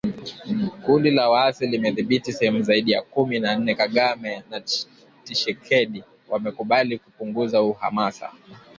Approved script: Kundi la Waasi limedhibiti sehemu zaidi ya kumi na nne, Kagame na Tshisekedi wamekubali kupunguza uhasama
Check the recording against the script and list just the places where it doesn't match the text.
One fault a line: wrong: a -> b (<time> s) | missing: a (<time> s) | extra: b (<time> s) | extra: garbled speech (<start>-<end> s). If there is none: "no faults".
no faults